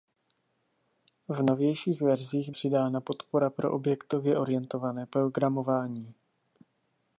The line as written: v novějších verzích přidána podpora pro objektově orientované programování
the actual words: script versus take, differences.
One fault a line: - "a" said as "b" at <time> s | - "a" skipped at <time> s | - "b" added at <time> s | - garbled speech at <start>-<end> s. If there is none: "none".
none